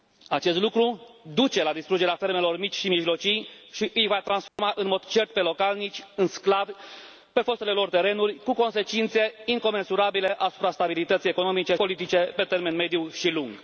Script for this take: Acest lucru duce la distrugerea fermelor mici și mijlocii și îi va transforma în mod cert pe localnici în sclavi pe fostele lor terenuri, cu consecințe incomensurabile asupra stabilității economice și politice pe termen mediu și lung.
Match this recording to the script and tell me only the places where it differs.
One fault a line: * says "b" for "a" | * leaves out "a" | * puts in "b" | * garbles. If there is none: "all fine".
* leaves out "și"